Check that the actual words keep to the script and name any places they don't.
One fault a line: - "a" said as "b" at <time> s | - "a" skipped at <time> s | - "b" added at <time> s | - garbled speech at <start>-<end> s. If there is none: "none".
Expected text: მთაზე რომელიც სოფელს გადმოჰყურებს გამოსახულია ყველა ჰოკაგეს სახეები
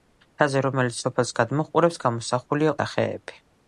- "ყველა ჰოკაგეს" skipped at 2.8 s